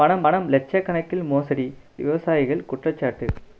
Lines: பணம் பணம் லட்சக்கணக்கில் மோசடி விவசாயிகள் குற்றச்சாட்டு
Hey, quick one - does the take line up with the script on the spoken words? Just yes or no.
yes